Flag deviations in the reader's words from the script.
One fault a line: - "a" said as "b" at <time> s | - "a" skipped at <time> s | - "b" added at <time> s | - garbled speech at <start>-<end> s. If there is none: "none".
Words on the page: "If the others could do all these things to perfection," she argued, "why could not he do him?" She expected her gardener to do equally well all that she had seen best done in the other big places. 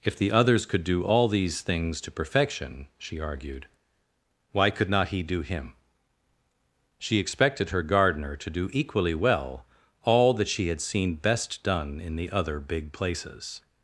none